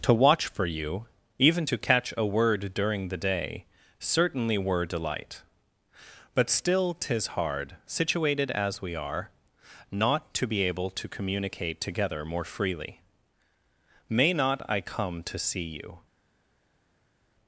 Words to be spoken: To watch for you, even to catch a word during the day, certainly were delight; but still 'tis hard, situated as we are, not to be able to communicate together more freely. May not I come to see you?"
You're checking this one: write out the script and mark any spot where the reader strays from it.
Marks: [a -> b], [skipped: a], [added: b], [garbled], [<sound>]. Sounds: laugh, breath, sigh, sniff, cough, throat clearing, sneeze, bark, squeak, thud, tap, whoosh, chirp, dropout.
To watch for you, even to catch a word during the day, certainly were delight; but still 'tis hard, situated as we are, not to be able to communicate together more freely. May not I come to see you?"